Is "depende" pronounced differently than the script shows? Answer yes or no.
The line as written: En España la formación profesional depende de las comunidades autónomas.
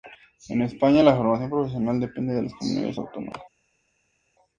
no